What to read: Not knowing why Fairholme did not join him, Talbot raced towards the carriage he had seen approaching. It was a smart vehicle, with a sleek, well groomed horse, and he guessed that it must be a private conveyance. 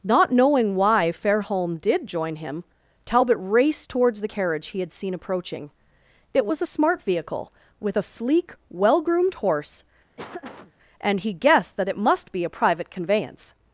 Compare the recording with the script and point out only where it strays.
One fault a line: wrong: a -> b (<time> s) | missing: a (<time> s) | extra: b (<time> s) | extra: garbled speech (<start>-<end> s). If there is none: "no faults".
missing: not (2.1 s)